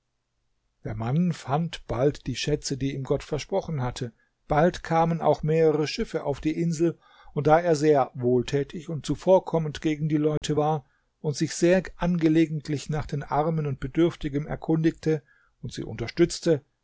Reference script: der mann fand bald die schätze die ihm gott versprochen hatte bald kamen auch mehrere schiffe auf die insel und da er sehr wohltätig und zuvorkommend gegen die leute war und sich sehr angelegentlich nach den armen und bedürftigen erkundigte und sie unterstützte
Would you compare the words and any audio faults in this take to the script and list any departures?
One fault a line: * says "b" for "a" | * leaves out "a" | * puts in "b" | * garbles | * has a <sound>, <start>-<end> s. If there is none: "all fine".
* has a dropout, 10.4-10.4 s